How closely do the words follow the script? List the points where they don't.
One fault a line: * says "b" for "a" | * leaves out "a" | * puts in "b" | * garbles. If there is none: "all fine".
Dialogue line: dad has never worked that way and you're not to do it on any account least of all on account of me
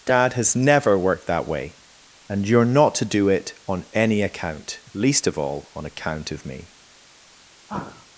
all fine